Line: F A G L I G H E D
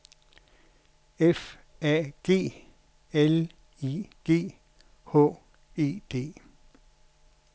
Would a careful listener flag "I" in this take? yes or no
no